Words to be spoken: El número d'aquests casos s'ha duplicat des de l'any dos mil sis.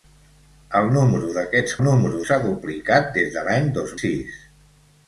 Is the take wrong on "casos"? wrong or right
wrong